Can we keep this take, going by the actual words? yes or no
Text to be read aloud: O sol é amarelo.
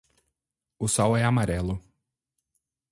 yes